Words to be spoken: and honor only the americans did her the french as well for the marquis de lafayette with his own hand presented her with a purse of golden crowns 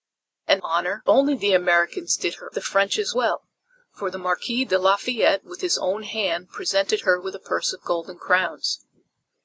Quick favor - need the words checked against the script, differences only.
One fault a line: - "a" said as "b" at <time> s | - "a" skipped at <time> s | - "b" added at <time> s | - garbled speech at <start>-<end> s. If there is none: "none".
none